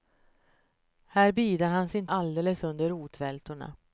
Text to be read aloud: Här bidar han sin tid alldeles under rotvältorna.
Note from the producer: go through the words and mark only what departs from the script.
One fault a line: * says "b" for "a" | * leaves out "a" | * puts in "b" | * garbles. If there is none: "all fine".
* leaves out "tid"